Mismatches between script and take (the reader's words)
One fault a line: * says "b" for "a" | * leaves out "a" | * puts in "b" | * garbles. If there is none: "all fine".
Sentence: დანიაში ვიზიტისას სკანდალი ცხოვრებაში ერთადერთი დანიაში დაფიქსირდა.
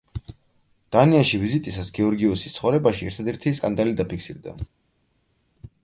* says "გეორგიოსის" for "სკანდალი"
* says "სკანდალი" for "დანიაში"